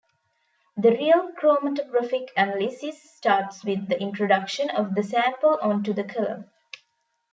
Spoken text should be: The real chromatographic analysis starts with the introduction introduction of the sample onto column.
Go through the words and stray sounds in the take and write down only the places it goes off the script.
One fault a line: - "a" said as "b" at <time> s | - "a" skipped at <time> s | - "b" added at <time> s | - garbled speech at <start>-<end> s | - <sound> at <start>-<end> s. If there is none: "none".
- "introduction" skipped at 4.7 s
- "the" added at 5.9 s